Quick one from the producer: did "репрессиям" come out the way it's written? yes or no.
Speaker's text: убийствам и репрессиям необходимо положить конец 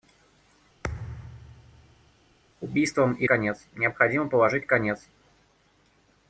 no